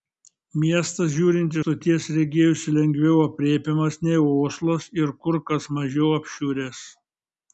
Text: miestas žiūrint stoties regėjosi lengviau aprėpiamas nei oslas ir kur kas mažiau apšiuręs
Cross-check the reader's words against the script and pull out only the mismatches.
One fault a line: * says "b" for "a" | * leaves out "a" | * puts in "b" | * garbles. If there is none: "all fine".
all fine